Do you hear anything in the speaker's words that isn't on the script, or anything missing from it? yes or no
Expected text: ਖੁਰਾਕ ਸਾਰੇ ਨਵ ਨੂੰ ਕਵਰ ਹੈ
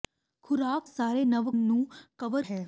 no